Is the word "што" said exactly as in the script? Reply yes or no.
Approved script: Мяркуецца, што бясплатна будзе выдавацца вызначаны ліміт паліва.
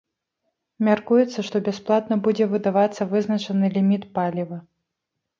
yes